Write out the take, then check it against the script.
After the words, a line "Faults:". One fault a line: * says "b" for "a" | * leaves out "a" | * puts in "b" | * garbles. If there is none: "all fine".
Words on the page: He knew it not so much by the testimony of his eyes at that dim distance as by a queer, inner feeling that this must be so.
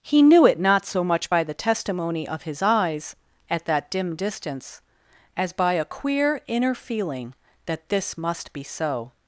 He knew it not so much by the testimony of his eyes at that dim distance as by a queer, inner feeling that this must be so.
Faults:
all fine